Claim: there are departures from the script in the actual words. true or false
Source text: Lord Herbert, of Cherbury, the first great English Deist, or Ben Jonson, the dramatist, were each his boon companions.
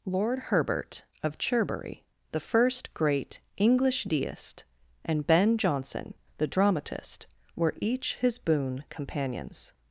true